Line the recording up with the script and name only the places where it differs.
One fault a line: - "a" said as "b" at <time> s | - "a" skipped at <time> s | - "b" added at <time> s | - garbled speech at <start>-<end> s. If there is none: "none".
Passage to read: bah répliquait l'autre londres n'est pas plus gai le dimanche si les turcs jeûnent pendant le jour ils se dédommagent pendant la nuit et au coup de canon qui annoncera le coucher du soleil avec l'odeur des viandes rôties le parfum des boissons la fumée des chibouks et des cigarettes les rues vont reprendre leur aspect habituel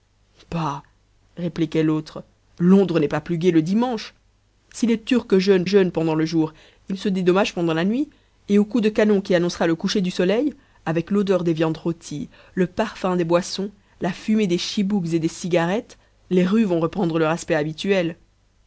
- "jeûnent" added at 5.6 s